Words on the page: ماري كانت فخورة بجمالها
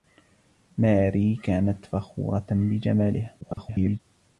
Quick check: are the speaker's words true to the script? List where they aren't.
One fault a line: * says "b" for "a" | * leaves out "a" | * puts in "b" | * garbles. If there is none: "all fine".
* garbles